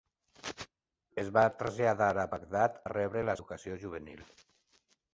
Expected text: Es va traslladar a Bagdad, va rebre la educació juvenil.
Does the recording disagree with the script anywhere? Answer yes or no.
no